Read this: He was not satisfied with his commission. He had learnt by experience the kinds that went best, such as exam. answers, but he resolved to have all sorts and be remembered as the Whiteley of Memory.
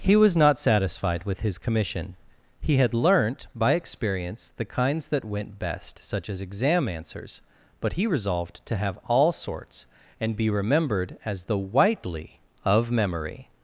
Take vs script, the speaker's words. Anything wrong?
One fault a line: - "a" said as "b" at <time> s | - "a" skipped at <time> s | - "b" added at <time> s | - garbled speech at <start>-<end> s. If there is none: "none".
none